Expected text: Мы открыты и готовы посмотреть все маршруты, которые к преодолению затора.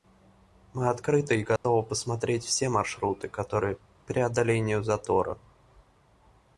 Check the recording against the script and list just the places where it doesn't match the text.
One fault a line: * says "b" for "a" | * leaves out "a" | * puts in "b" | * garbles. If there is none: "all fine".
all fine